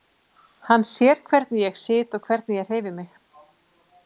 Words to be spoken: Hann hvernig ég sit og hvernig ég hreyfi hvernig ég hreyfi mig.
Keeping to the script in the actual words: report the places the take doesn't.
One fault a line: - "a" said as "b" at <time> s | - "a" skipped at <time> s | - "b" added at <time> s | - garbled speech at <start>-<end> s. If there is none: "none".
- "sér" added at 0.9 s
- "hvernig ég hreyfi" skipped at 3.0 s